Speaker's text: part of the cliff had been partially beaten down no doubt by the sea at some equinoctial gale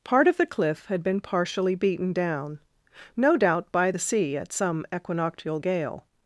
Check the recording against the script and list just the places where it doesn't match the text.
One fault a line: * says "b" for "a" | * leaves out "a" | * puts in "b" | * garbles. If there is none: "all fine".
all fine